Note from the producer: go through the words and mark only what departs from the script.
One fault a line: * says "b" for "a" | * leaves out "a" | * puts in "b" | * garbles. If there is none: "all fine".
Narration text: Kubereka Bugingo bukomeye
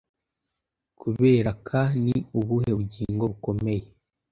* puts in "Ni ubuhe"